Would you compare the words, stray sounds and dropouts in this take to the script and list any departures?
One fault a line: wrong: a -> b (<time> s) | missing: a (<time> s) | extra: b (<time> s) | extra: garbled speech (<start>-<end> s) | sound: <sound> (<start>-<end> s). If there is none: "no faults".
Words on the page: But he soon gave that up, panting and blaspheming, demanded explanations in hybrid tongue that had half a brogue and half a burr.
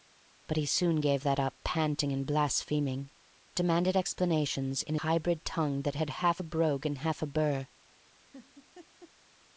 sound: laugh (8.3-9.1 s)